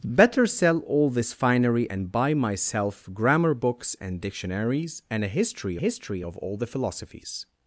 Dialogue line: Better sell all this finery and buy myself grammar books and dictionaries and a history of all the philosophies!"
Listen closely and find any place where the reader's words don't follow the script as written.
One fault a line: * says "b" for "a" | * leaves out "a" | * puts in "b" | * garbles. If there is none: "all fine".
* puts in "history"